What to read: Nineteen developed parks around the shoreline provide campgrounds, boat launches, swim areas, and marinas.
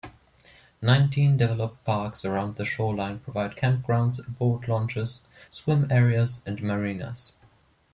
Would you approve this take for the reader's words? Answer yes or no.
yes